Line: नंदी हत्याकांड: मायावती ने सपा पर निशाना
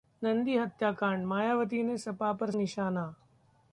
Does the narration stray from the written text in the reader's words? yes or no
no